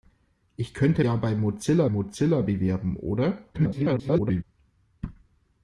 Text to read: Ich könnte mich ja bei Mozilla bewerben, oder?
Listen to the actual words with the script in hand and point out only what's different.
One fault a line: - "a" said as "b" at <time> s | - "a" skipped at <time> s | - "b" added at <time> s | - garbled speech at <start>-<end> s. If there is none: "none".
- "mich" skipped at 1.1 s
- "Mozilla" added at 1.9 s
- garbled speech at 3.5-4.4 s